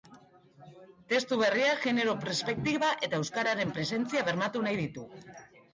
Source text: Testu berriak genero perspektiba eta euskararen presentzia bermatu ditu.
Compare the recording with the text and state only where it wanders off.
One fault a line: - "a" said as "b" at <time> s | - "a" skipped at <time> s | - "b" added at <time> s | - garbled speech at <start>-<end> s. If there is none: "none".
- "nahi" added at 4.7 s